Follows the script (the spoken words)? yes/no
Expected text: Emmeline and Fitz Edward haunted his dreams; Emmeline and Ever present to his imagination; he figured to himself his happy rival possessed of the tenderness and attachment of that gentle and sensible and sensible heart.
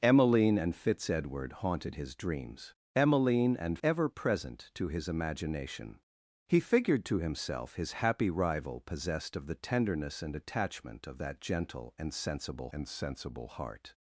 yes